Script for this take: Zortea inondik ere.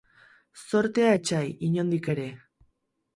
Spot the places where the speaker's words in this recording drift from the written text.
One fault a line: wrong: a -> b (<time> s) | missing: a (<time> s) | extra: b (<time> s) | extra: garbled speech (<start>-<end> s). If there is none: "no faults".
extra: etsai (1.1 s)